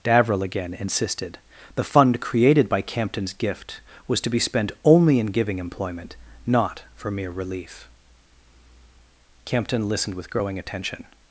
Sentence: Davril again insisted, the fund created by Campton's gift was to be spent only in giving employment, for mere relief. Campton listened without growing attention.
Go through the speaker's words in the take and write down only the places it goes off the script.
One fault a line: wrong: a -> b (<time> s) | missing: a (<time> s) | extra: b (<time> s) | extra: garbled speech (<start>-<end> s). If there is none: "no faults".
extra: not (6.5 s)
wrong: without -> with (10.2 s)